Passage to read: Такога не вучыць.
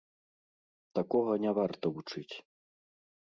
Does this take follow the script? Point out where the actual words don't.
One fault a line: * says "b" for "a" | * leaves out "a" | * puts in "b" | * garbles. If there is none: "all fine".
* puts in "варта"